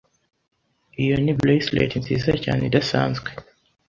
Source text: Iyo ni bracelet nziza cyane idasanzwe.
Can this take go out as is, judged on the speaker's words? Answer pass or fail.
pass